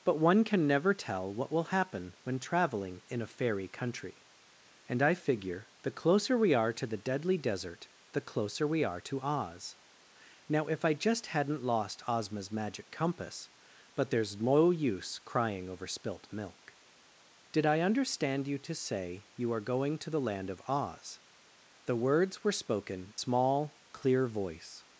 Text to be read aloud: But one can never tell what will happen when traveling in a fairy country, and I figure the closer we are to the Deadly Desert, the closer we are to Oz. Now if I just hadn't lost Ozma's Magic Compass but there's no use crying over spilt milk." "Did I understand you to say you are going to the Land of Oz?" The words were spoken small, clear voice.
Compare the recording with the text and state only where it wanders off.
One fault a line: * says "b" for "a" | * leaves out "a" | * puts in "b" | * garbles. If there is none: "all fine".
all fine